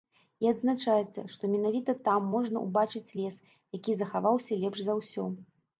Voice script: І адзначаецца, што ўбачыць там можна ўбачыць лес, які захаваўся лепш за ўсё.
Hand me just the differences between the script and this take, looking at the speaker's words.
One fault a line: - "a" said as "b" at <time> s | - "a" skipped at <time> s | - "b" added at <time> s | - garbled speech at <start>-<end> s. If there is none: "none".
- "ўбачыць" said as "менавіта" at 1.5 s